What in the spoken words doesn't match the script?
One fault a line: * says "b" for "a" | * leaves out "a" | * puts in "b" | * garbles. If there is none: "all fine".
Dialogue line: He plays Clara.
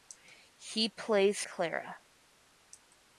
all fine